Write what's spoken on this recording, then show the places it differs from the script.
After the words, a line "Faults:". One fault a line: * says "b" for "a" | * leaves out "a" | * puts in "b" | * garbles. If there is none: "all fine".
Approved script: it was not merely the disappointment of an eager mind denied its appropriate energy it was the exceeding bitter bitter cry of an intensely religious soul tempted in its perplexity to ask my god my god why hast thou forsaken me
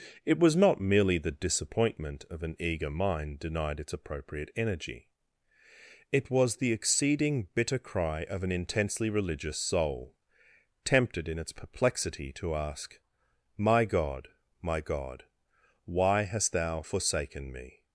it was not merely the disappointment of an eager mind denied its appropriate energy it was the exceeding bitter cry of an intensely religious soul tempted in its perplexity to ask my god my god why hast thou forsaken me
Faults:
* leaves out "bitter"